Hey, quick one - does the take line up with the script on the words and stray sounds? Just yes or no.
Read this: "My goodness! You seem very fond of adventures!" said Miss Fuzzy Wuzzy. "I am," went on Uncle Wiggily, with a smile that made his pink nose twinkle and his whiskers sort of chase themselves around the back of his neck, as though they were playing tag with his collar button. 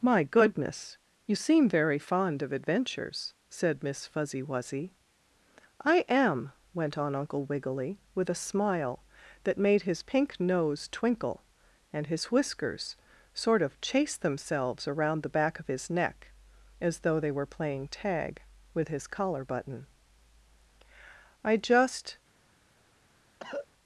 no